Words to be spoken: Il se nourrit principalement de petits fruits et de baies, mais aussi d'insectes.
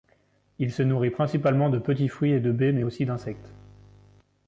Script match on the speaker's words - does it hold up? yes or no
yes